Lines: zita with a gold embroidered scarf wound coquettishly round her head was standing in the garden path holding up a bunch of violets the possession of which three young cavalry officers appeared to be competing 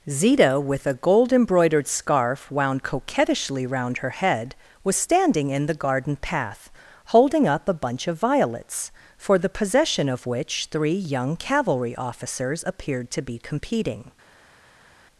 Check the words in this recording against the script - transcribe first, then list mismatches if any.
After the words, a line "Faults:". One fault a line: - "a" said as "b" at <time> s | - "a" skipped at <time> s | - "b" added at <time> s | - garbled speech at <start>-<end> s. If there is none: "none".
zita with a gold embroidered scarf wound coquettishly round her head was standing in the garden path holding up a bunch of violets for the possession of which three young cavalry officers appeared to be competing
Faults:
- "for" added at 9.2 s